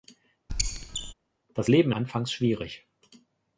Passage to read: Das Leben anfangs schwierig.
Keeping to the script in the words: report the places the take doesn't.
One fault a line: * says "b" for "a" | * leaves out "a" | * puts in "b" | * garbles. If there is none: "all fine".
all fine